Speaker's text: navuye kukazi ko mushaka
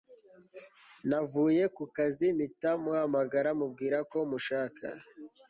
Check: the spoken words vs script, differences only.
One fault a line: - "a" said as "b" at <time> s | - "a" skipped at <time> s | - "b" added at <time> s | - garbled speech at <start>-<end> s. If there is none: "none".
- "mpita muhamagara mubwira" added at 2.4 s